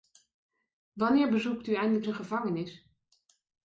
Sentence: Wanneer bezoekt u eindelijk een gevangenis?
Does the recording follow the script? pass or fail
pass